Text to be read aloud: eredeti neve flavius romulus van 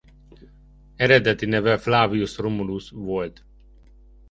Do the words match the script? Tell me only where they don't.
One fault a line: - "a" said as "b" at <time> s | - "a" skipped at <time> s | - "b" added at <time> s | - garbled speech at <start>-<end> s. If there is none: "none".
- "van" said as "volt" at 2.9 s